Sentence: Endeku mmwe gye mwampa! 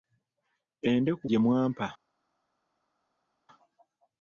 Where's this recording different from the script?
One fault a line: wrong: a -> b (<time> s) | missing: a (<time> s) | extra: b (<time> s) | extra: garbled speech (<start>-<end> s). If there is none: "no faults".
missing: mmwe (1.2 s)